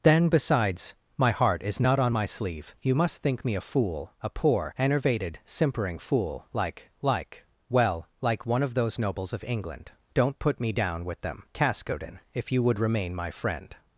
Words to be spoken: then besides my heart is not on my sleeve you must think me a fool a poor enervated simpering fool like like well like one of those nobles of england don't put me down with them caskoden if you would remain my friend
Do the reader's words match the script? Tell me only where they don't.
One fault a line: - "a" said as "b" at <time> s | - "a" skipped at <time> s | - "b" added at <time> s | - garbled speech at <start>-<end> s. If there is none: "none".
none